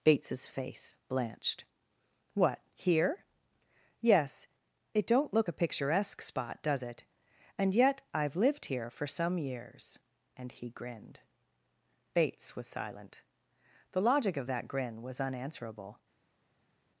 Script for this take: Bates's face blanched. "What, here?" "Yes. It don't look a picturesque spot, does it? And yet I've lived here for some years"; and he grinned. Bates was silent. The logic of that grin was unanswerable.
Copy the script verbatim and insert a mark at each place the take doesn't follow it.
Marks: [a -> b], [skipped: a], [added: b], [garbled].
Bates's face blanched. "What, here?" "Yes. It don't look a picturesque spot, does it? And yet I've lived here for some years"; and he grinned. Bates was silent. The logic of that grin was unanswerable.